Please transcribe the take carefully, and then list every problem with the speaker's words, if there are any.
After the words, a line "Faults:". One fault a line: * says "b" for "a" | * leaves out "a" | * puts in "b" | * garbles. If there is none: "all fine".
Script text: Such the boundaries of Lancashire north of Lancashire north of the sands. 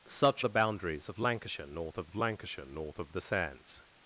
Such the boundaries of Lancashire north of Lancashire north of the sands.
Faults:
all fine